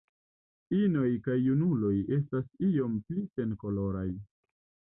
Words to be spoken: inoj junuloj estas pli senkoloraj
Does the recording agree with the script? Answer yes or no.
no